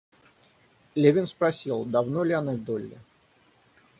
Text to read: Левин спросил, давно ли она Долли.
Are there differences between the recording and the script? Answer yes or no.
no